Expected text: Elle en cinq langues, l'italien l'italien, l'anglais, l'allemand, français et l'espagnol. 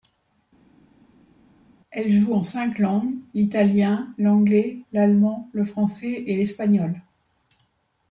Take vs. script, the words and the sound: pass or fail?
fail